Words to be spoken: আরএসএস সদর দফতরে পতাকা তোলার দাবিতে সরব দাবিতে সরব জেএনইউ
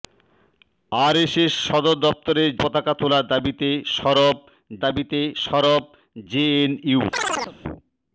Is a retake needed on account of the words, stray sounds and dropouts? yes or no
yes